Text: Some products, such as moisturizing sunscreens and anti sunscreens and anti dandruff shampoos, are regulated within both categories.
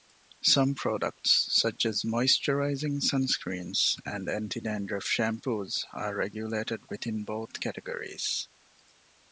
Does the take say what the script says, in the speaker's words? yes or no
no